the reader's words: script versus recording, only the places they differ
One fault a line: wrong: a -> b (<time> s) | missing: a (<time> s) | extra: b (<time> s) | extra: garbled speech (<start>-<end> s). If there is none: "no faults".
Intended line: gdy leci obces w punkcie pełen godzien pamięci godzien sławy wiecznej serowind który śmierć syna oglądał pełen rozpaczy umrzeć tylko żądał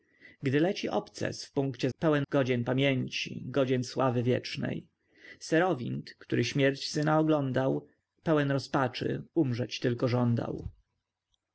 no faults